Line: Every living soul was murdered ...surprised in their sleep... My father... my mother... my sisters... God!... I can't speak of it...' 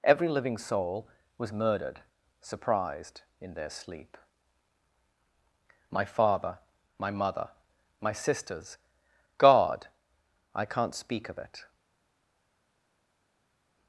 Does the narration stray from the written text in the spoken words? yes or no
no